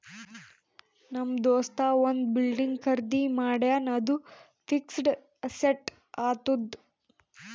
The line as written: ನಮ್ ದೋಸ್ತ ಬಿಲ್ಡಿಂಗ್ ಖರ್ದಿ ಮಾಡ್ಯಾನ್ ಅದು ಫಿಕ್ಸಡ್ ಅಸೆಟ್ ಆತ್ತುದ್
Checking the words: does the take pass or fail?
fail